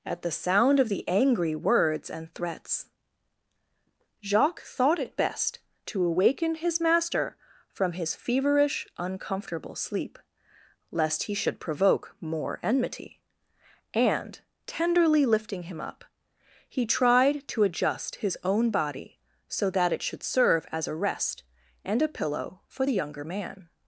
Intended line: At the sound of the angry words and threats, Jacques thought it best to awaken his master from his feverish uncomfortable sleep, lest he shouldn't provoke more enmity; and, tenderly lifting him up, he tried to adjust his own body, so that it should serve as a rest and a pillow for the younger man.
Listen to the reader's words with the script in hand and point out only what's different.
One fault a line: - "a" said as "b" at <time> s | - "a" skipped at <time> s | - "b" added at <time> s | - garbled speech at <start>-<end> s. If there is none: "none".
- "shouldn't" said as "should" at 11.3 s